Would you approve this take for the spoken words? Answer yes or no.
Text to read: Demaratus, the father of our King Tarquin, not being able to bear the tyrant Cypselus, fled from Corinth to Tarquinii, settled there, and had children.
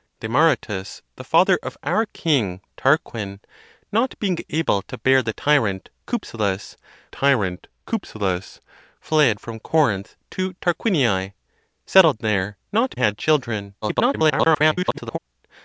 no